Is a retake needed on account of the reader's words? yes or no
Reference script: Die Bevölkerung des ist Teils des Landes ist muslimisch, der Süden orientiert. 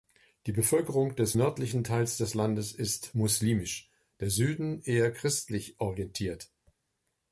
yes